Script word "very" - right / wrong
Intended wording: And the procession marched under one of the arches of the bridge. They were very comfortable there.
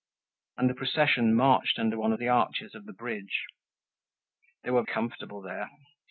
wrong